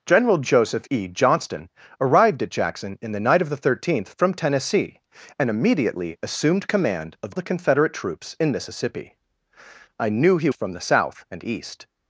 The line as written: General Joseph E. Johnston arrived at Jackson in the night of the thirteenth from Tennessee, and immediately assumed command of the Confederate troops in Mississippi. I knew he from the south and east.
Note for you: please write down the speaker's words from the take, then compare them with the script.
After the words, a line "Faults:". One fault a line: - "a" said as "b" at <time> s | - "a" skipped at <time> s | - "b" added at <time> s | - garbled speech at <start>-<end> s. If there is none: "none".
General Joseph E. Johnston arrived at Jackson in the night of the thirteenth from Tennessee, and immediately assumed command of the Confederate troops in Mississippi. I knew he from the south and east.
Faults:
none